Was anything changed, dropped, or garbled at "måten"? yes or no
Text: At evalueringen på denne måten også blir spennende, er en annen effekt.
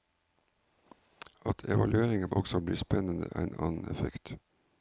yes